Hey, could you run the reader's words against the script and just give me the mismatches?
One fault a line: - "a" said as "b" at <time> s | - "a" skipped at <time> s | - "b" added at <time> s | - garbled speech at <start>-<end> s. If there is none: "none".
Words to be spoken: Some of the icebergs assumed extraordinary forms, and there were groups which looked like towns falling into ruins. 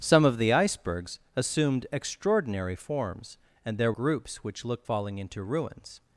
- "were" skipped at 3.9 s
- "like towns" skipped at 4.9 s